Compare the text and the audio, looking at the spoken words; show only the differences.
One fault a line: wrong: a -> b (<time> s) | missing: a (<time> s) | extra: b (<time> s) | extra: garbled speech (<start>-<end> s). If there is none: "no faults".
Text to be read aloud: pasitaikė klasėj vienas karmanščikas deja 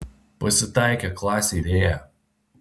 missing: vienas karmanščikas (1.6 s)